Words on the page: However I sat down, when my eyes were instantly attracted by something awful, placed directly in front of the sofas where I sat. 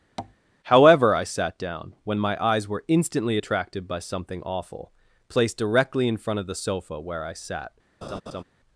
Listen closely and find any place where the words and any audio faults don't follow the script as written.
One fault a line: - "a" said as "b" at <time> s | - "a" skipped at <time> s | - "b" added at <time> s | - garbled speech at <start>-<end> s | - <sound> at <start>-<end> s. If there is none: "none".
- tap at 0.2-0.4 s
- "sofas" said as "sofa" at 6.5 s
- laugh at 8.0-8.4 s